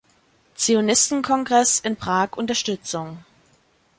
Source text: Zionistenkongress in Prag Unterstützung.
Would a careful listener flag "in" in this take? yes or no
no